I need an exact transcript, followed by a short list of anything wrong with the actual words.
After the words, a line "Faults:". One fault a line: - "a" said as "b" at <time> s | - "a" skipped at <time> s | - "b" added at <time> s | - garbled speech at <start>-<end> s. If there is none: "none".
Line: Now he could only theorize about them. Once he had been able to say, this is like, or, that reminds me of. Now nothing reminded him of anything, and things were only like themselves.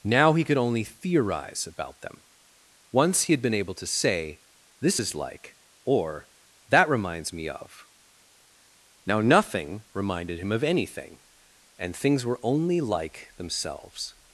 Now he could only theorize about them. Once he had been able to say, this is like, or, that reminds me of. Now nothing reminded him of anything, and things were only like themselves.
Faults:
none